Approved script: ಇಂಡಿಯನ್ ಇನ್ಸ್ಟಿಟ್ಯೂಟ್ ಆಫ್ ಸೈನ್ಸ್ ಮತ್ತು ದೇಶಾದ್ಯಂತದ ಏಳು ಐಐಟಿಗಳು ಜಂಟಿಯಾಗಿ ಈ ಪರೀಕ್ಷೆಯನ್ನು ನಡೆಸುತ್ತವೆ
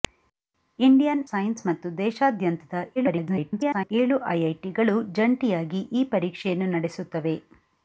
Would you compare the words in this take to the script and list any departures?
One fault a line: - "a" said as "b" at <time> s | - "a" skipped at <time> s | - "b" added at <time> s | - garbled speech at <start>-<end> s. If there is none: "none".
- "ಇನ್ಸ್ಟಿಟ್ಯೂಟ್ ಆಫ್" skipped at 1.2 s
- garbled speech at 3.0-3.9 s